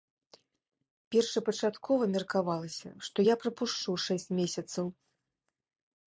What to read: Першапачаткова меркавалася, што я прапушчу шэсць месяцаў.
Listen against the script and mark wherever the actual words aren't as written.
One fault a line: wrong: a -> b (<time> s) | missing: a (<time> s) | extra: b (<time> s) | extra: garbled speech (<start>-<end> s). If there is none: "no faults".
no faults